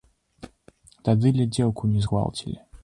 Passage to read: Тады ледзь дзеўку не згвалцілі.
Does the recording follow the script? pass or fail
pass